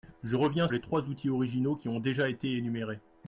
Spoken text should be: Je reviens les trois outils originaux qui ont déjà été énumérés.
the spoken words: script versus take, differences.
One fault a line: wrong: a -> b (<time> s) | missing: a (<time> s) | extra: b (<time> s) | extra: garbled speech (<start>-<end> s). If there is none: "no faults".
no faults